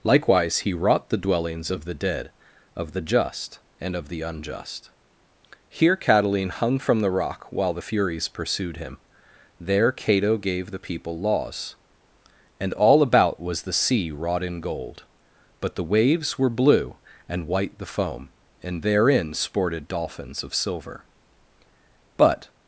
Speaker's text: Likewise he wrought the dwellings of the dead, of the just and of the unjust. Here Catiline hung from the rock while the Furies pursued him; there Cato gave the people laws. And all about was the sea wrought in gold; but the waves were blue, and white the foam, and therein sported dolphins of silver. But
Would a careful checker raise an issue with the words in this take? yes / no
no